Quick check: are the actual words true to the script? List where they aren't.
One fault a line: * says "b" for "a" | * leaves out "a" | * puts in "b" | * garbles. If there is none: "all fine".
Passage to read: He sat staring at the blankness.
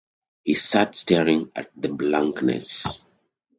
all fine